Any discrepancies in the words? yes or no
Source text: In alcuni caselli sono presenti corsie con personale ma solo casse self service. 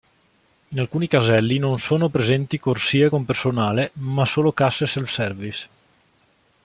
yes